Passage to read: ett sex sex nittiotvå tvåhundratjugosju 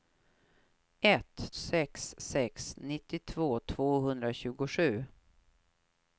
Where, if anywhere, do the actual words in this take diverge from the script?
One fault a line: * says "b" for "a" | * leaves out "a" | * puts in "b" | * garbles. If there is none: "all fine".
all fine